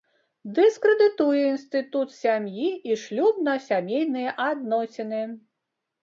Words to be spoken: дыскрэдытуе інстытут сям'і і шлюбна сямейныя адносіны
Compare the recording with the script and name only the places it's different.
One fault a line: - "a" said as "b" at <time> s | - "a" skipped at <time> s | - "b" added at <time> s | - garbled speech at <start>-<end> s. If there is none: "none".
none